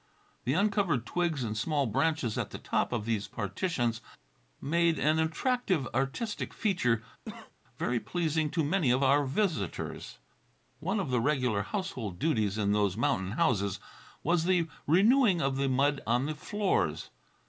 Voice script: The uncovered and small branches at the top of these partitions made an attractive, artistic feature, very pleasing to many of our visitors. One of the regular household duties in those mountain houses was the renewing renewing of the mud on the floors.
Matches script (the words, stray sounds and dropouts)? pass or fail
fail